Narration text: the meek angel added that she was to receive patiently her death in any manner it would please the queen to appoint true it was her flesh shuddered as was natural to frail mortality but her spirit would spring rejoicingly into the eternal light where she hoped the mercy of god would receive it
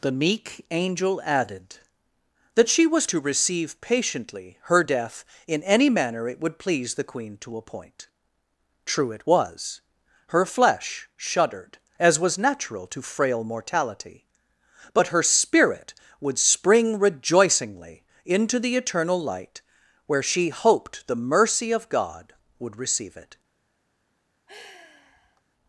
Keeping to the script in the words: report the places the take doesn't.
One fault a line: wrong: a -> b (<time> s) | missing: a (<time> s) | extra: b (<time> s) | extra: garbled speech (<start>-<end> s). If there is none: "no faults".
no faults